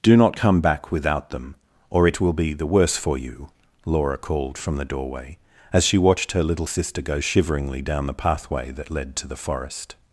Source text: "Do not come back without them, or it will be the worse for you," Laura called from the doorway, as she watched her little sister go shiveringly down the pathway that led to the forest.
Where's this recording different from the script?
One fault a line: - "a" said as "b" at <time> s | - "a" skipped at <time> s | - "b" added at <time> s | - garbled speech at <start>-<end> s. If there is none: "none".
none